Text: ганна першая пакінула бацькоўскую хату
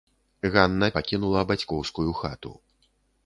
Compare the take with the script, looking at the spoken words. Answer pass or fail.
fail